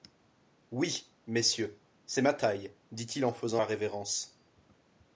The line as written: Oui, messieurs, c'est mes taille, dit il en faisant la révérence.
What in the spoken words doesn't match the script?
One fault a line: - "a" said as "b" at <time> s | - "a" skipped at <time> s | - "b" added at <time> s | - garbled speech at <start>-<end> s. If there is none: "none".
- "mes" said as "ma" at 2.2 s